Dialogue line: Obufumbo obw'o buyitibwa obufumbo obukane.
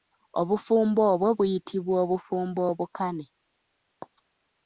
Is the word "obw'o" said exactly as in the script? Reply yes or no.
yes